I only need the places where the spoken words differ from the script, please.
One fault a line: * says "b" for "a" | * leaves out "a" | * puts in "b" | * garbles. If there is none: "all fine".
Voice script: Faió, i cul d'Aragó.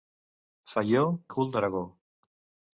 all fine